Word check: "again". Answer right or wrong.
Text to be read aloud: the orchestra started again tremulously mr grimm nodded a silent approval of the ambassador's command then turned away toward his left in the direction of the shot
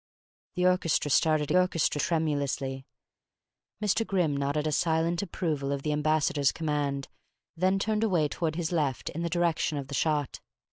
wrong